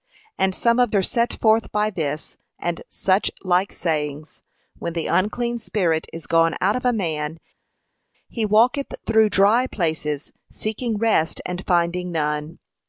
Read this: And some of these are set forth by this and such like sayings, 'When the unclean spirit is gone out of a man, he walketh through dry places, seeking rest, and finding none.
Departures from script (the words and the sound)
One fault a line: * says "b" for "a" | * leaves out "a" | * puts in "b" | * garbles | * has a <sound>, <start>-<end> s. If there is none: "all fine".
* leaves out "these"